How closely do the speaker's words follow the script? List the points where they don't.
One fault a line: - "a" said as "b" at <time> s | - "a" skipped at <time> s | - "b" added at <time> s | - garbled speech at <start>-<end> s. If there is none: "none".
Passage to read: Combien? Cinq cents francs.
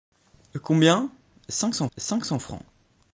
- "cinq cents" added at 2.0 s